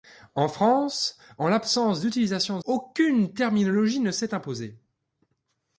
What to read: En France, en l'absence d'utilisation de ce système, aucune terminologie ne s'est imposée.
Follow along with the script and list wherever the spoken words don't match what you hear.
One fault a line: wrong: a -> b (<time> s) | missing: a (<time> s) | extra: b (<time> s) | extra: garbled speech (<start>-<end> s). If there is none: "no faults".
missing: ce système (2.6 s)